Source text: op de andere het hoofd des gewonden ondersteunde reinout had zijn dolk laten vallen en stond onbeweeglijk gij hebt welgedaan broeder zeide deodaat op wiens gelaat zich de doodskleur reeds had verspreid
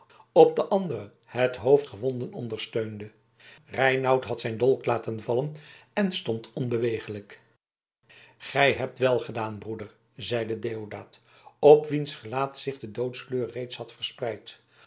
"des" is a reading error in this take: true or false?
true